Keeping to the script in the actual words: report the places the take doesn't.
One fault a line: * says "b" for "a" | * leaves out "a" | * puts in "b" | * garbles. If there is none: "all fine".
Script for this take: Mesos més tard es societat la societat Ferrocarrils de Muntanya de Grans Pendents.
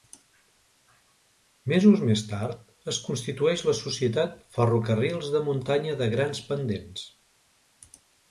* says "constitueix" for "societat"